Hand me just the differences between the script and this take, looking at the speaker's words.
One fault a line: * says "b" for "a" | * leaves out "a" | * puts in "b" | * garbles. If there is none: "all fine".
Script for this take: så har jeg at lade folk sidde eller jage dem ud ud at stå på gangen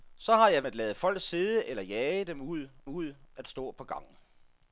all fine